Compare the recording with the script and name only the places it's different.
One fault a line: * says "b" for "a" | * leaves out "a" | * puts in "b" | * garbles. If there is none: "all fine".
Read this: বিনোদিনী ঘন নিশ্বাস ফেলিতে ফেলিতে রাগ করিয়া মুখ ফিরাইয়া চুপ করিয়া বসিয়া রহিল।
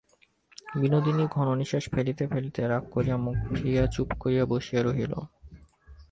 all fine